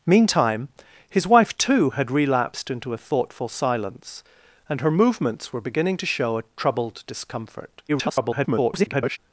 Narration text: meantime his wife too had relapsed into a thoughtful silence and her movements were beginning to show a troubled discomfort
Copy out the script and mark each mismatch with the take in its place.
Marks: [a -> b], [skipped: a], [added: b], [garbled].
meantime his wife too had relapsed into a thoughtful silence and her movements were beginning to show a troubled discomfort [garbled]